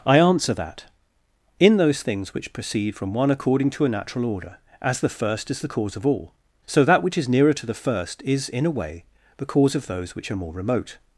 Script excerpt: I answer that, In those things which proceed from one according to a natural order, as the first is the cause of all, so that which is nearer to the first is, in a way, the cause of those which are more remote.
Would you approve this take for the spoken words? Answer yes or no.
yes